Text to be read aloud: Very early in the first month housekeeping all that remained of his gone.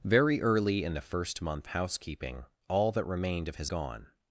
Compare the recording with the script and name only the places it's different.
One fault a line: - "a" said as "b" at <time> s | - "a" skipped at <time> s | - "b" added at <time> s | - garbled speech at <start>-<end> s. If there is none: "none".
none